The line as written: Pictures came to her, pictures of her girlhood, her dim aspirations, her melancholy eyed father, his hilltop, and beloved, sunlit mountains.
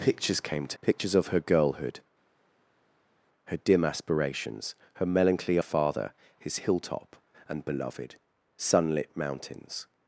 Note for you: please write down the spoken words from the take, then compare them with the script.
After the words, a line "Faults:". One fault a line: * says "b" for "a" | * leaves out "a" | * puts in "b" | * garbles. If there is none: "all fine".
Pictures came to pictures of her girlhood, her dim aspirations, her melancholy father, his hilltop, and beloved, sunlit mountains.
Faults:
* leaves out "her"
* leaves out "eyed"